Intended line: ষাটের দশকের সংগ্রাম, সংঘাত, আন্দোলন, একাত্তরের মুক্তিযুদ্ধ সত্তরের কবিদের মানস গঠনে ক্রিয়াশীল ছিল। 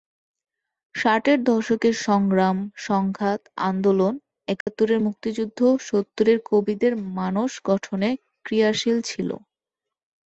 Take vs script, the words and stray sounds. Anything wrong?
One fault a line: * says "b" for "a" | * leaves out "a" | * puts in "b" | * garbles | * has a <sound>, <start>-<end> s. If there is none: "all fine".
* has a dropout, 4.6-4.7 s